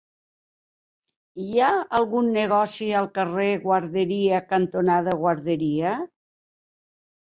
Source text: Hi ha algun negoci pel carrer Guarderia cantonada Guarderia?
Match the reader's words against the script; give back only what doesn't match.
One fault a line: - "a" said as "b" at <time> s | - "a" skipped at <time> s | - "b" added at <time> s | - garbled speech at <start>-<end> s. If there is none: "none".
- "pel" said as "al" at 3.0 s